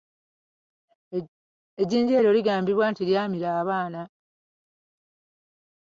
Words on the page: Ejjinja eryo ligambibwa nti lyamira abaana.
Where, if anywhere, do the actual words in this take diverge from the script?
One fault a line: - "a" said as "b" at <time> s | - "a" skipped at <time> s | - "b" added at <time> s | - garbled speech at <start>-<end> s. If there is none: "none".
none